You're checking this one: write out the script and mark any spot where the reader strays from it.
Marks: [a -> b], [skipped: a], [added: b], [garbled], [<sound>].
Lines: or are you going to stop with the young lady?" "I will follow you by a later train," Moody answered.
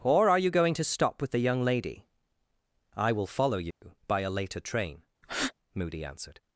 or are you going to stop with the young lady?" "I will follow you [dropout] by a later train," [breath] Moody answered.